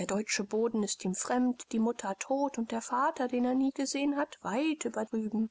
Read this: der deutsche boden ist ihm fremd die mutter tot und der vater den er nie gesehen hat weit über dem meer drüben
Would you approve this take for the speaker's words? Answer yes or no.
no